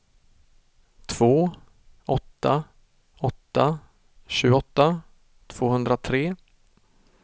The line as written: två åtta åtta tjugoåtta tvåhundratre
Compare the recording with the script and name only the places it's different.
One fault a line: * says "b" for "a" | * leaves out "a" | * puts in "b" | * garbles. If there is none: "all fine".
all fine